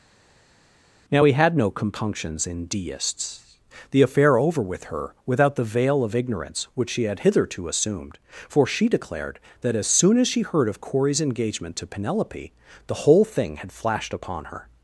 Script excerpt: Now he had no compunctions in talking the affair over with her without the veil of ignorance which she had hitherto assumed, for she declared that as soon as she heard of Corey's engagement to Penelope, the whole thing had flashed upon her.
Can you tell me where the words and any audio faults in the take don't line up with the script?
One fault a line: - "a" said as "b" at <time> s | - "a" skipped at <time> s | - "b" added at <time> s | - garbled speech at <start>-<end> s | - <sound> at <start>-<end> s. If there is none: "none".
- "talking" said as "deists" at 2.6 s